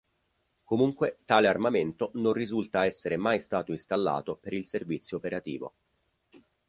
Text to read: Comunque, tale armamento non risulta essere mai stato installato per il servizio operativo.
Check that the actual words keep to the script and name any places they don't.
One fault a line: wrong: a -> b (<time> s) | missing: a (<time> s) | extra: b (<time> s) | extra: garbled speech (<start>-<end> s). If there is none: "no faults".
no faults